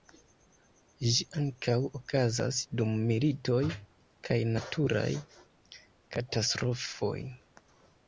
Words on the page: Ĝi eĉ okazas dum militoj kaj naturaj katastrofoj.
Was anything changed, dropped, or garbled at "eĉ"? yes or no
yes